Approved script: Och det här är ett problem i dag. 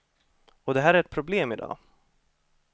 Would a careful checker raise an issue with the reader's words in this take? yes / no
no